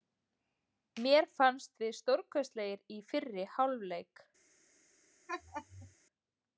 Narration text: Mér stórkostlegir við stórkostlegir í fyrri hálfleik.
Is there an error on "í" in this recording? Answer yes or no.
no